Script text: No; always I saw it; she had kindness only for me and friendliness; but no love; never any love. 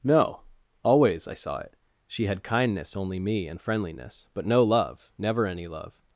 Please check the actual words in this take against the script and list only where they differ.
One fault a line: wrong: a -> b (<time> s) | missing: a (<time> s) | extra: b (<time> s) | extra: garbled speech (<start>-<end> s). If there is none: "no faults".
missing: for (3.2 s)